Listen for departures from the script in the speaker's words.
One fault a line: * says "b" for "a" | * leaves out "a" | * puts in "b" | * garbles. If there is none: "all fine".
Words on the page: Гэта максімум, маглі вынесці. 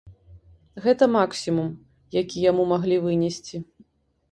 * puts in "які яму"